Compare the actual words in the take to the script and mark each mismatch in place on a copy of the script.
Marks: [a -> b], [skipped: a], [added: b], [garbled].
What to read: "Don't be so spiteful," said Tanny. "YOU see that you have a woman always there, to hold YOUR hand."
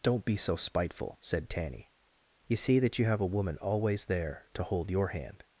"Don't be so spiteful," said Tanny. "YOU see that you have a woman always there, to hold YOUR hand."